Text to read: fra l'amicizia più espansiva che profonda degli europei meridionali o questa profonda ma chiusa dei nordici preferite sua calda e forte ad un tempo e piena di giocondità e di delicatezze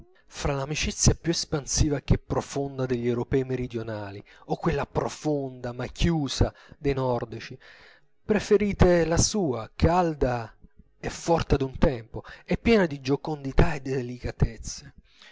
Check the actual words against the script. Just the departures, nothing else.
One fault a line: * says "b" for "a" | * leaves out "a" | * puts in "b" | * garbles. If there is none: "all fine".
* says "quella" for "questa"
* puts in "la"